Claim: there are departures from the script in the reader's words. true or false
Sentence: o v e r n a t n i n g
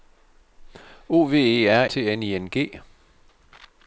true